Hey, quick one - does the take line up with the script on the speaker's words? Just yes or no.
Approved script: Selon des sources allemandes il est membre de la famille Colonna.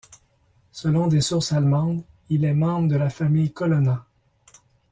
yes